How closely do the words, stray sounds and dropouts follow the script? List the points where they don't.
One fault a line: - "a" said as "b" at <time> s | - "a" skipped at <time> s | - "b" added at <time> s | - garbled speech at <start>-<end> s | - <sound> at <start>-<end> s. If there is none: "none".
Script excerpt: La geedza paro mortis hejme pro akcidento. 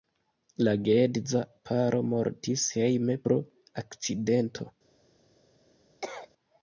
- cough at 6.0-6.3 s